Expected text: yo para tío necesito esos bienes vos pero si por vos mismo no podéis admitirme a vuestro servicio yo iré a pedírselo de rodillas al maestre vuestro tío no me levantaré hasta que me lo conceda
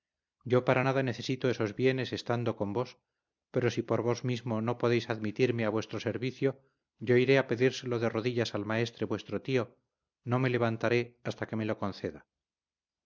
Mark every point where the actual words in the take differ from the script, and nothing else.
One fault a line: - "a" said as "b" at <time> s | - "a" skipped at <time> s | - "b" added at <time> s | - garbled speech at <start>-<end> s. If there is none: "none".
- "tío" said as "nada" at 0.8 s
- "estando con" added at 2.1 s